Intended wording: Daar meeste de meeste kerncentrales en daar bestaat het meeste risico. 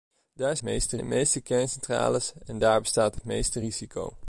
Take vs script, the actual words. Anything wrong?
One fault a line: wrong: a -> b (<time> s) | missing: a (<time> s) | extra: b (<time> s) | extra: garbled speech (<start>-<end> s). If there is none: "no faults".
no faults